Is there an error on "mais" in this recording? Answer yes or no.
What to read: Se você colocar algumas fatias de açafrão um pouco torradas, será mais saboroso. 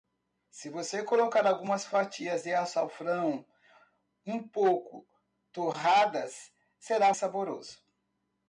yes